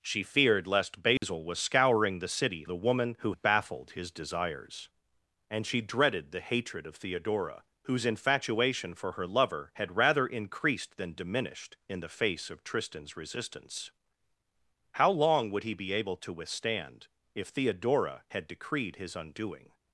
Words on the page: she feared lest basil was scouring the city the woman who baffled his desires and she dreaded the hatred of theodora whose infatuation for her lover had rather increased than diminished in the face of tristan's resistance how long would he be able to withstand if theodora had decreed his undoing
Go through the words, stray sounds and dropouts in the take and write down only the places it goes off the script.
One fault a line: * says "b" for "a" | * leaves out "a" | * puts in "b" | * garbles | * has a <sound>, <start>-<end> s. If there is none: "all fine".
* has a dropout, 1.2-1.2 s